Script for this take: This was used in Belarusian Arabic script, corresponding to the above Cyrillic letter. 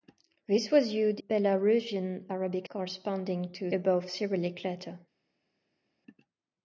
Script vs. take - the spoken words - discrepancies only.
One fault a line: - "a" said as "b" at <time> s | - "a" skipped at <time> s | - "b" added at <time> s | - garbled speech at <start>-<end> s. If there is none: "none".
- "in" skipped at 1.2 s
- "script" skipped at 2.7 s
- "the" skipped at 3.7 s